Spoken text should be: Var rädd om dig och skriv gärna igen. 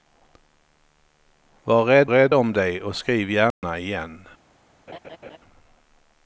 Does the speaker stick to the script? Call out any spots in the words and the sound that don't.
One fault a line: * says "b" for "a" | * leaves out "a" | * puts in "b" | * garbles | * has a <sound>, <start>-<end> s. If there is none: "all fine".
* puts in "rädd"
* has a dropout, 3.5-3.6 s
* has a laugh, 4.9-5.4 s